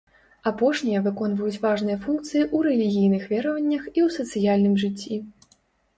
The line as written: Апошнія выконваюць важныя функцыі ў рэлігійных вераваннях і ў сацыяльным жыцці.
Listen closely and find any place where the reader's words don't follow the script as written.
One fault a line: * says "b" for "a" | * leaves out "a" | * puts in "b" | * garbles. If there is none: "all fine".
all fine